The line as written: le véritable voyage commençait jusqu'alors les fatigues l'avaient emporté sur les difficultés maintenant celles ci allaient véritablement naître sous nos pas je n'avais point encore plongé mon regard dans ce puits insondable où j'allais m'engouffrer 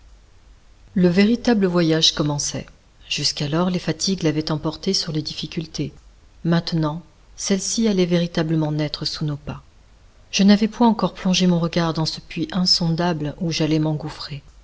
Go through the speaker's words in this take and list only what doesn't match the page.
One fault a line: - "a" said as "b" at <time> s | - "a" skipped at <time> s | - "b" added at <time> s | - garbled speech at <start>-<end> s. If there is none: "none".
none